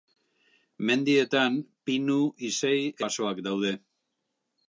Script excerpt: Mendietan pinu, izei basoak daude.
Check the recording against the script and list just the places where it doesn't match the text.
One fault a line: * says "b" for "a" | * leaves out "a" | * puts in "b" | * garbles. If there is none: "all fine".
all fine